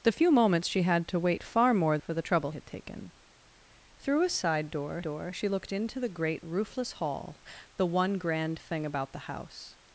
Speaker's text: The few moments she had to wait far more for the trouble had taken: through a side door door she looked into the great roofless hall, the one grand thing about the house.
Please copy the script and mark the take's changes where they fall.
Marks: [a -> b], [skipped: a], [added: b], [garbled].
The few moments she had to wait far more for the trouble had taken: through a side door door she looked into the great roofless hall, the one grand thing about the house.